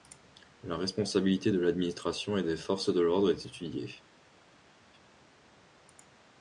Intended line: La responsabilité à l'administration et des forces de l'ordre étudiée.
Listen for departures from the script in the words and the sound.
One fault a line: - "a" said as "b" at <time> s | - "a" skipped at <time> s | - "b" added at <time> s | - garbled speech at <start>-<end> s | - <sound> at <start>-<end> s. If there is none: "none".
- "à" said as "de" at 1.5 s
- "est" added at 3.3 s